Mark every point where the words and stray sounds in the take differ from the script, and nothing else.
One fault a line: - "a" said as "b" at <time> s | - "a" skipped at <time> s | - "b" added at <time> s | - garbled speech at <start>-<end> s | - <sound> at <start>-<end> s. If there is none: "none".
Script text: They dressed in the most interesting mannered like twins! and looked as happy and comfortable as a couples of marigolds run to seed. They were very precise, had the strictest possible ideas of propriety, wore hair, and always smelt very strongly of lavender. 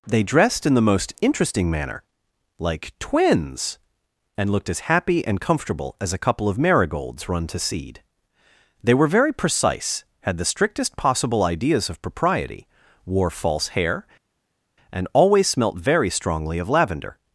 - "mannered" said as "manner" at 1.7 s
- "couples" said as "couple" at 6.2 s
- "false" added at 13.3 s